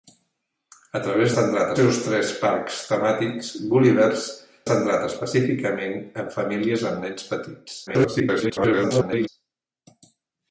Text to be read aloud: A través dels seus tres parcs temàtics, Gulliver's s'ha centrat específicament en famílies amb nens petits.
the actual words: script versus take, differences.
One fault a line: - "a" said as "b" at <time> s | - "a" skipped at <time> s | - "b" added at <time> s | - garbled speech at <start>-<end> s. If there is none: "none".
- "dels" said as "centrat" at 1.3 s
- "s'ha" skipped at 4.3 s
- garbled speech at 7.9-9.3 s